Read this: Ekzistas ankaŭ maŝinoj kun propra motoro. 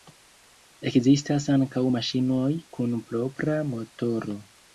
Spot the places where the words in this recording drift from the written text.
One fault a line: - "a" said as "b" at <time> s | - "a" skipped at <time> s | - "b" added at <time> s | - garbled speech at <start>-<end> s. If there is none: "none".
none